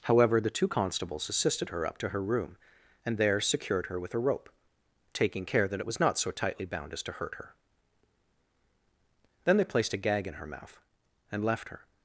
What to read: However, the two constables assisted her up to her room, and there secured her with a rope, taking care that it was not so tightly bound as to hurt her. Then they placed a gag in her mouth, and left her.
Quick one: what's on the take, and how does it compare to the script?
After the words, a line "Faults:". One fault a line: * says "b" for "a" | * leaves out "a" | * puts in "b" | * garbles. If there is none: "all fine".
However, the two constables assisted her up to her room, and there secured her with a rope, taking care that it was not so tightly bound as to hurt her. Then they placed a gag in her mouth, and left her.
Faults:
all fine